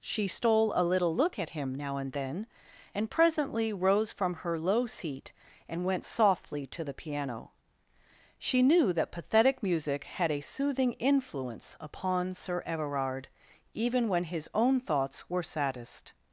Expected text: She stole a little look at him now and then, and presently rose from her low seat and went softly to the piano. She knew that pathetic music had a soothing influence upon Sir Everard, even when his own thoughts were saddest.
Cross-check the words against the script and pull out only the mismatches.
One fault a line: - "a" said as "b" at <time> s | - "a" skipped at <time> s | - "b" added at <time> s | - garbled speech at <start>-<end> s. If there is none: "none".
none